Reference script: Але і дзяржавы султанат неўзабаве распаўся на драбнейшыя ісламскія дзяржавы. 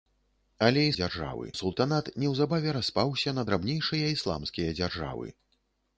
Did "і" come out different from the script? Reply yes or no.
no